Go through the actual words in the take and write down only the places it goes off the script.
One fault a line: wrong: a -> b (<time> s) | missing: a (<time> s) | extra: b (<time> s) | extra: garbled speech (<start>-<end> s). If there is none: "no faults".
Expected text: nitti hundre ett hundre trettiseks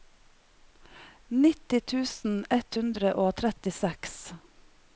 wrong: hundre -> tusen (1.9 s)
extra: og (3.2 s)